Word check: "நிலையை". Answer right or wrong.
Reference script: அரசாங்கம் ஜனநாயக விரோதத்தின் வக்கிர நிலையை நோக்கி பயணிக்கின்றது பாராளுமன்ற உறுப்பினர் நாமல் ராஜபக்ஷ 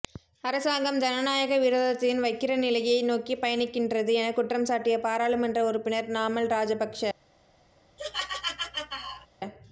right